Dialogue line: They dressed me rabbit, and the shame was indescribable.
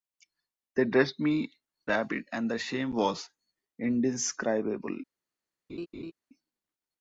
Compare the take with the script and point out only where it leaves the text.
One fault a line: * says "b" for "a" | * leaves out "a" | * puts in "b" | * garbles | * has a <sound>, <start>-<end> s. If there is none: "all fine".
* has a laugh, 5.7-6.1 s